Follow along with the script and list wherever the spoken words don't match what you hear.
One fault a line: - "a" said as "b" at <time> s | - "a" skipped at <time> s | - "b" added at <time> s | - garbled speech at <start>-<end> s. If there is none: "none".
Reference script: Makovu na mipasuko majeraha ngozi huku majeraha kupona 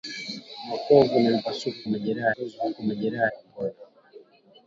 none